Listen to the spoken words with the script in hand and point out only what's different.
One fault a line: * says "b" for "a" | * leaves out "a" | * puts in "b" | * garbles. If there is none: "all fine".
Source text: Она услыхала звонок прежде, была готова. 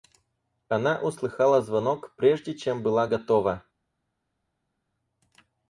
* puts in "чем"